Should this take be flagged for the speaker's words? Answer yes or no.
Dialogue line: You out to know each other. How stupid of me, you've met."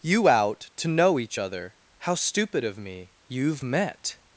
no